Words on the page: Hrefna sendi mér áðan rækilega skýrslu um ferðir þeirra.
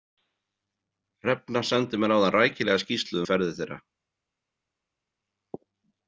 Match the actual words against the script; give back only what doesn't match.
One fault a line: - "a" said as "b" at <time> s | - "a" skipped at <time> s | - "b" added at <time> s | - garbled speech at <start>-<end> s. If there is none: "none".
none